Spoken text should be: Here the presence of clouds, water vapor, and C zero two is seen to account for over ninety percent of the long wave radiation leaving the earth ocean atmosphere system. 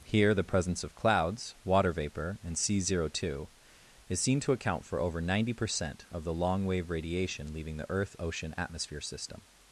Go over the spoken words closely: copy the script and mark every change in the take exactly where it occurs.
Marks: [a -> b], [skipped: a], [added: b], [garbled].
Here the presence of clouds, water vapor, and C zero two is seen to account for over ninety percent of the long wave radiation leaving the earth ocean atmosphere system.